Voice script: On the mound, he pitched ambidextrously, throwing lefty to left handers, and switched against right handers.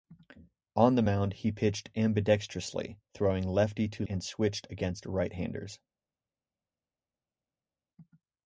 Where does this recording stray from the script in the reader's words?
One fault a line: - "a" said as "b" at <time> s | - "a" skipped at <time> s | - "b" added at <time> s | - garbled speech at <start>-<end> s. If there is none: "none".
- "left handers" skipped at 4.1 s